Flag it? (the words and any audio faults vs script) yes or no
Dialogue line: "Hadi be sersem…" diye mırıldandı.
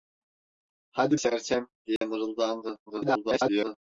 yes